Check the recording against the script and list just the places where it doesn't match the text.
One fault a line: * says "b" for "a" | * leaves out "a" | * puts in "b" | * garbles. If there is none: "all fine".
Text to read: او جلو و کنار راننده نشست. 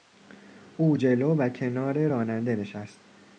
all fine